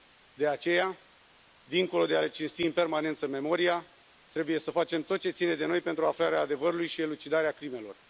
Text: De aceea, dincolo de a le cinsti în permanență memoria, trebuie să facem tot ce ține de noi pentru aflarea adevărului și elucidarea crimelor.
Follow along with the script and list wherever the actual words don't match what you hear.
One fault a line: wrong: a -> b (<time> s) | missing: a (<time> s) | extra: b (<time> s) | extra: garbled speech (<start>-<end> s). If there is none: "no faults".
no faults